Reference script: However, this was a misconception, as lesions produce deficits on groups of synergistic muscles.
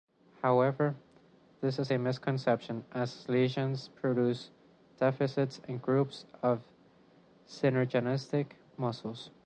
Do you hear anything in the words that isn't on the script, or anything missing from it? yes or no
yes